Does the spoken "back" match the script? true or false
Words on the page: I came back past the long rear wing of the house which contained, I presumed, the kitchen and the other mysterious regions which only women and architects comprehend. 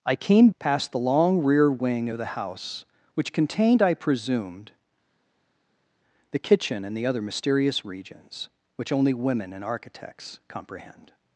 false